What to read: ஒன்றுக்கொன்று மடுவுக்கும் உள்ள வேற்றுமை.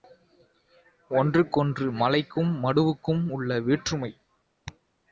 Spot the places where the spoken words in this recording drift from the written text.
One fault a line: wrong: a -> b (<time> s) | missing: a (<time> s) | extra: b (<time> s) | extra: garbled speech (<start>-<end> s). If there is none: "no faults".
extra: மலைக்கும் (1.9 s)